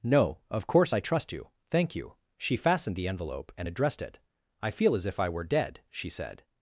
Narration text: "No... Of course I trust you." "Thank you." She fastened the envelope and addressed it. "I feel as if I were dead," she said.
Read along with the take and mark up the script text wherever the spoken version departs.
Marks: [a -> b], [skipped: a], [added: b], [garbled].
"No... Of course I trust you." "Thank you." She fastened the envelope and addressed it. "I feel as if I were dead," she said.